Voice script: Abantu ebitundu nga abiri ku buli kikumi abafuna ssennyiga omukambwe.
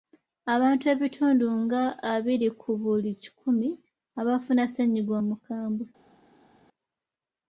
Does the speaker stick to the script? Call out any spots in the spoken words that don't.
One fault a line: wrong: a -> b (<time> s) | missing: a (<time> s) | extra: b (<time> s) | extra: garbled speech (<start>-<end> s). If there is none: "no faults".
no faults